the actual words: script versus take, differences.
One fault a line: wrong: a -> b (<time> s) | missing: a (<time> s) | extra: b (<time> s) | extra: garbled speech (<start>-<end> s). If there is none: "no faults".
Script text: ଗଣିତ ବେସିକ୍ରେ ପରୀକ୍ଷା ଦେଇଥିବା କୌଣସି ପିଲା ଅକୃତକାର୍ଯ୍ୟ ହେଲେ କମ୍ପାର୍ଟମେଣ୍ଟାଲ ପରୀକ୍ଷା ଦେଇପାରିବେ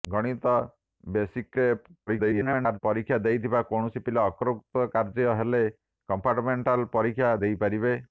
extra: garbled speech (2.1-2.8 s)